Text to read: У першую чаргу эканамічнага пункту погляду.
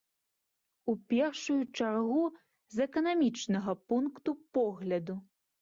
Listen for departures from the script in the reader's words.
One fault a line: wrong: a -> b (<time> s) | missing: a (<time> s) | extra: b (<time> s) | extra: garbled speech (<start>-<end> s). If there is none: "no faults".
extra: з (2.8 s)